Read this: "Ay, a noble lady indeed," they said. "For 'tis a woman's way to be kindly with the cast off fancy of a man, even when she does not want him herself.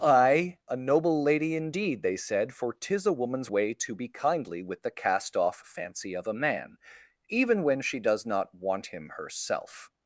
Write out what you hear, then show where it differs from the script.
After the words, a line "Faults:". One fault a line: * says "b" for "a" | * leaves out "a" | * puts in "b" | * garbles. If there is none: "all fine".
"Ay, a noble lady indeed," they said. "For 'tis a woman's way to be kindly with the cast off fancy of a man, even when she does not want him herself.
Faults:
all fine